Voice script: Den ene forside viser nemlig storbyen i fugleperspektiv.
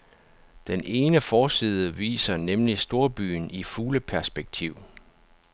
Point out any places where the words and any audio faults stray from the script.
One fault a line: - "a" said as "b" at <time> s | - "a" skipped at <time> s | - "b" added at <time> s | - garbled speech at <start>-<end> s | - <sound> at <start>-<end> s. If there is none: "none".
none